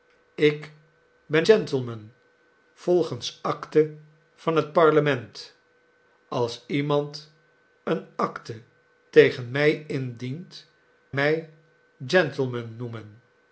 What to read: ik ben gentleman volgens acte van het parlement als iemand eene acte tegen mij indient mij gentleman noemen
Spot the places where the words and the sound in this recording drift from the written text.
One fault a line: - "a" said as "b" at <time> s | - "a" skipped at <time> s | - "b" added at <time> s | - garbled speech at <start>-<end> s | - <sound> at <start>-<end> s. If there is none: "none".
none